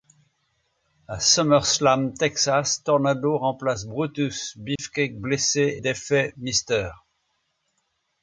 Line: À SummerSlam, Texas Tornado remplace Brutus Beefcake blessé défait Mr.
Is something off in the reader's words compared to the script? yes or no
no